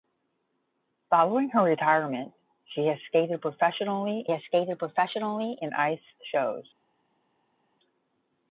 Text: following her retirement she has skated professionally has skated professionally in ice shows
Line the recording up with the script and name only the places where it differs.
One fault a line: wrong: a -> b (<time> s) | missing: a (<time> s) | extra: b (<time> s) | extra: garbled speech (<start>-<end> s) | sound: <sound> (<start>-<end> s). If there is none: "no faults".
no faults